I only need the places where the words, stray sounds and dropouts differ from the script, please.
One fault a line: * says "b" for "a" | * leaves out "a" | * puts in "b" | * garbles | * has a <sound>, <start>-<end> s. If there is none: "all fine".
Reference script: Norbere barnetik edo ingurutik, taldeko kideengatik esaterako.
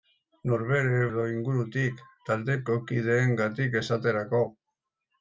* leaves out "barnetik"